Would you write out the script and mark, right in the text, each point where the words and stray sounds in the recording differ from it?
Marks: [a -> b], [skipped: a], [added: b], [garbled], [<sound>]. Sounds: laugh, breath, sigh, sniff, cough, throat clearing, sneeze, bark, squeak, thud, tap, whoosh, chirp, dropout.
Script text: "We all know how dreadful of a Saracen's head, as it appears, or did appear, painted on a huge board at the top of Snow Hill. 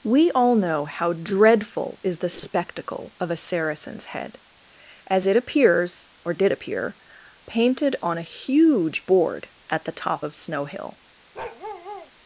"We all know how dreadful [added: is the spectacle] of a Saracen's head, as it appears, or did appear, painted on a huge board at the top of Snow Hill. [bark]